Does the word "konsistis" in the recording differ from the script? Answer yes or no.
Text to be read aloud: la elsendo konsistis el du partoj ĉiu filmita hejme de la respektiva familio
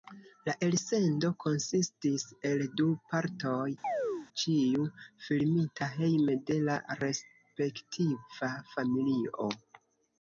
no